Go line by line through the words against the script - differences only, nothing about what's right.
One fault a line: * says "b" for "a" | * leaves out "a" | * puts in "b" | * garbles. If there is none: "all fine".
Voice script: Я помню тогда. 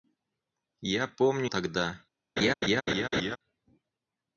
all fine